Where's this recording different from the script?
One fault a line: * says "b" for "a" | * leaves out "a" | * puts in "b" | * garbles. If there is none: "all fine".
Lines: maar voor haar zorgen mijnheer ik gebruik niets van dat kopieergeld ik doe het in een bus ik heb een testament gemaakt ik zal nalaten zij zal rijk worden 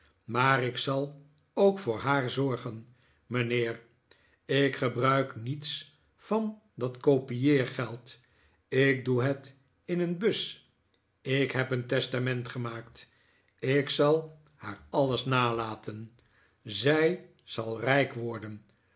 * puts in "ik zal ook"
* puts in "haar alles"